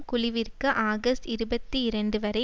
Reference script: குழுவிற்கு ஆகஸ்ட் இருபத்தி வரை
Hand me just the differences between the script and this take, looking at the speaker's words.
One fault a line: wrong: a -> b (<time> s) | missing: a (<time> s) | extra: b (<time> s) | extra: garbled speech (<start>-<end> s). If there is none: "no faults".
extra: இரண்டு (1.8 s)